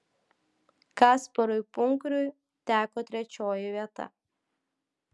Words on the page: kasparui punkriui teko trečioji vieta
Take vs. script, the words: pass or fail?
pass